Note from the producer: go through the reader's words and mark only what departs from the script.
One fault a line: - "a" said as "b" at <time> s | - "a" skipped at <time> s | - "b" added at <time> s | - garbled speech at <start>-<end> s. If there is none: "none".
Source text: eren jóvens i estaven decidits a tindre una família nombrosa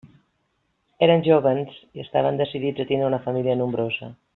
none